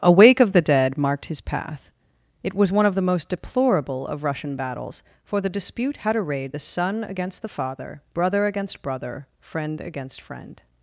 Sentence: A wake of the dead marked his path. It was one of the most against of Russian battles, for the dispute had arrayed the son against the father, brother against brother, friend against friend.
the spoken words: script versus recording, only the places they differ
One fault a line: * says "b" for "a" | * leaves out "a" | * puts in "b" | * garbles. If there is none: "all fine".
* says "deplorable" for "against"